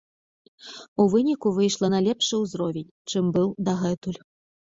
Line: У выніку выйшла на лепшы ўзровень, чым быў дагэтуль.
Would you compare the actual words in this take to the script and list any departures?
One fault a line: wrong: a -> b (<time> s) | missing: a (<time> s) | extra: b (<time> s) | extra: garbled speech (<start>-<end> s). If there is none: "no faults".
no faults